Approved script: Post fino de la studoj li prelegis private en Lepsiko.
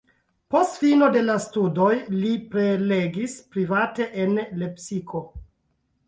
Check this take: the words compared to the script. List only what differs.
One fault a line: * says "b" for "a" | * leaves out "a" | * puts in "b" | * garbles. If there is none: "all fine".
all fine